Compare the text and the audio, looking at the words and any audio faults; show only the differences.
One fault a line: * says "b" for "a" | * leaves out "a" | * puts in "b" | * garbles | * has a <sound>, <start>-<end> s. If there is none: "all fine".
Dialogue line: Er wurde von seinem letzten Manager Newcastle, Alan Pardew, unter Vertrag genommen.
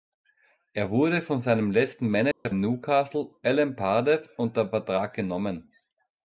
* has a dropout, 2.3-2.5 s